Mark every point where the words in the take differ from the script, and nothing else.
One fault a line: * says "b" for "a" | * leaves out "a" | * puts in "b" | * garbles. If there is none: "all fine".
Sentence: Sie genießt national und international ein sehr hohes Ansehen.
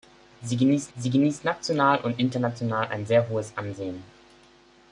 * puts in "sie genießt"